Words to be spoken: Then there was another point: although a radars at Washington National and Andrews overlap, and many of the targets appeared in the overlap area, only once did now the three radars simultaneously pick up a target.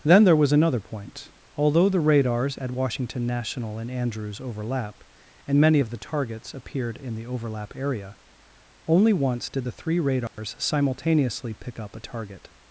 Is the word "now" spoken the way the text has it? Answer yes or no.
no